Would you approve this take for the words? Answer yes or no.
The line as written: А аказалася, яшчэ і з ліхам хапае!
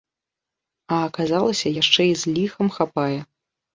yes